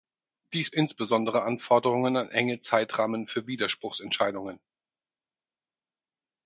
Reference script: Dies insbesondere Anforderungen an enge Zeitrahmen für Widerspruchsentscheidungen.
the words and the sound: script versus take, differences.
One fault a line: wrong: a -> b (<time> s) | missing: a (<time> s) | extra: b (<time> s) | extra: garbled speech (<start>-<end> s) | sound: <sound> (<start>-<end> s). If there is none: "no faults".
no faults